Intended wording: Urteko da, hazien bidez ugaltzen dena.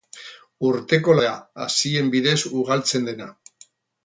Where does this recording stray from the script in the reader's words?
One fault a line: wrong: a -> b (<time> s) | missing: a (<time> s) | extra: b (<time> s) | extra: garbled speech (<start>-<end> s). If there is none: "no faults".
no faults